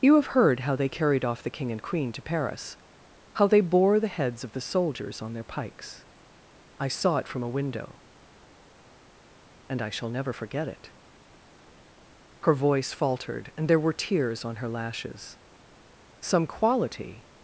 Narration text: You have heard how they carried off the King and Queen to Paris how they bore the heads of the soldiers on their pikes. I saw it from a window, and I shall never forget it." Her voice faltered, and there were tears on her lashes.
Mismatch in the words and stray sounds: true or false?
true